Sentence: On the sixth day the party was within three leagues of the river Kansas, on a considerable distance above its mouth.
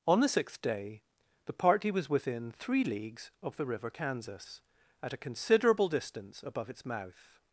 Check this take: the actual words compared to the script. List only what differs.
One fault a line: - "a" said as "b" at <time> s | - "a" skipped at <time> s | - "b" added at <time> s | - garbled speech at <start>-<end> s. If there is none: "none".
- "on" said as "at" at 5.0 s